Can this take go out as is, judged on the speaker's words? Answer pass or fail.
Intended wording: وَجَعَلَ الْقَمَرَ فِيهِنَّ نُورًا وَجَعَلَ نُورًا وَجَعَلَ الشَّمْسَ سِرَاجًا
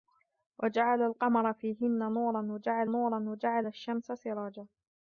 pass